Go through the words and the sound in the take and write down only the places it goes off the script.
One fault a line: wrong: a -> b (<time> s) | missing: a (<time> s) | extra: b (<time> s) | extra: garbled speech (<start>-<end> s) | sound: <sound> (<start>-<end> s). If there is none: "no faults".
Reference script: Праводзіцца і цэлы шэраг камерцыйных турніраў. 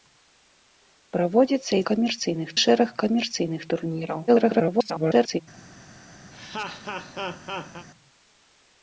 wrong: цэлы -> камерцыйных (1.9 s)
extra: garbled speech (4.3-5.4 s)
sound: laugh (6.3-7.9 s)